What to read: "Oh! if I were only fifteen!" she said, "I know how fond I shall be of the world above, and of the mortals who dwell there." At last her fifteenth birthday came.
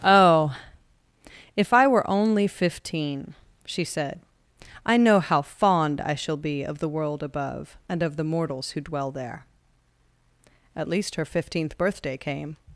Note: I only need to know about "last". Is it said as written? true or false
false